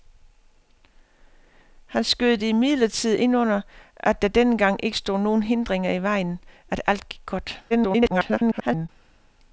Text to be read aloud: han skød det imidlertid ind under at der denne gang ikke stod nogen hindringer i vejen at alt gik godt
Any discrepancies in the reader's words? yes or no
yes